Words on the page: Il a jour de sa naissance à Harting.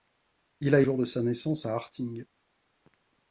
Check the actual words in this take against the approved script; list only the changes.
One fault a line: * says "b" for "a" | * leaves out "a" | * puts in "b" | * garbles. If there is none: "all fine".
all fine